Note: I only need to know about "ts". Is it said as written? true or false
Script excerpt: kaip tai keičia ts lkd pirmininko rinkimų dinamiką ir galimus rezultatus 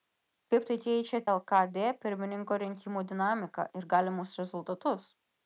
false